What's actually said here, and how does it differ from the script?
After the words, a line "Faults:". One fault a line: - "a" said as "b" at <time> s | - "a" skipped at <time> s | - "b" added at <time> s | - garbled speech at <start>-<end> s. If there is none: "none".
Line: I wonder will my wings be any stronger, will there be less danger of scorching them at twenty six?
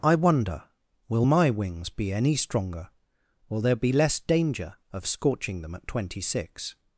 I wonder will my wings be any stronger, will there be less danger of scorching them at twenty six?
Faults:
none